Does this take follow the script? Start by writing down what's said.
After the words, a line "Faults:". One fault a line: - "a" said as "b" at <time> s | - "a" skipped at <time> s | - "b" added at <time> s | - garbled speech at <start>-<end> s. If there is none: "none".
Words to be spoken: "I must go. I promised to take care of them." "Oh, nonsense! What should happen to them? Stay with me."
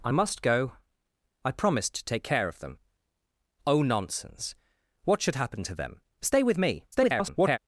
"I must go. I promised to take care of them." "Oh, nonsense! What should happen to them? Stay with me." [garbled]
Faults:
- garbled speech at 6.9-7.6 s